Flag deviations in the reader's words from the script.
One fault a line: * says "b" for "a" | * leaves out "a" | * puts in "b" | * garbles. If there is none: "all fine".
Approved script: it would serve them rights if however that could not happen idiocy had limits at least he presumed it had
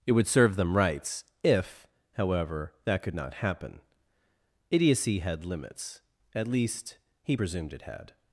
all fine